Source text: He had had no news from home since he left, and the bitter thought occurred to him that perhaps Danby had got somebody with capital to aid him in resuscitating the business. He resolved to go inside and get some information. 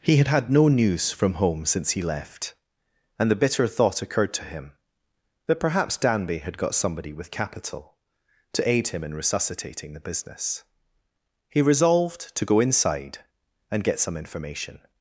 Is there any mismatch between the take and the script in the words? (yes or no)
no